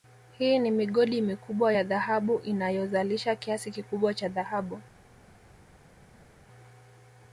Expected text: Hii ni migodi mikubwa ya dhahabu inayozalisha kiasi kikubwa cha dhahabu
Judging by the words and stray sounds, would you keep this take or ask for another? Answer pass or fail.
pass